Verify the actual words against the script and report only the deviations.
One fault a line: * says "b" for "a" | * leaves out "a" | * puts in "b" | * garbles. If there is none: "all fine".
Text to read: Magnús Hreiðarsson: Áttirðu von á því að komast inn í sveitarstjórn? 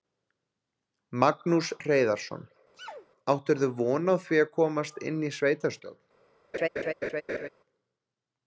all fine